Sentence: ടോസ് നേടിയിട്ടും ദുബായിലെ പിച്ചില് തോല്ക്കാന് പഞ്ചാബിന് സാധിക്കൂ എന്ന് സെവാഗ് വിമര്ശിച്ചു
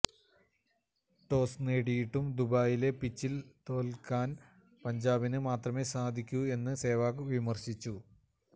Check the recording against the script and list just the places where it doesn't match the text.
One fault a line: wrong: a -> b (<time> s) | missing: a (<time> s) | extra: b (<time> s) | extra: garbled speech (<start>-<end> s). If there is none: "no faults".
extra: മാത്രമേ (5.5 s)